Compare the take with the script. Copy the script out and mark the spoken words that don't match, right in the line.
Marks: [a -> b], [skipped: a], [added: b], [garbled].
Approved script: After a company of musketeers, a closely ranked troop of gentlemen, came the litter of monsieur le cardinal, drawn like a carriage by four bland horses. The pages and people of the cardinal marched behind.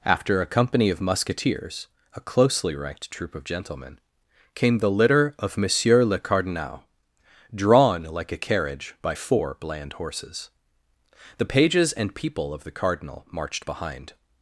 After a company of musketeers, a closely ranked troop of gentlemen, came the litter of monsieur le cardinal, drawn like a carriage by four bland horses. The pages and people of the cardinal marched behind.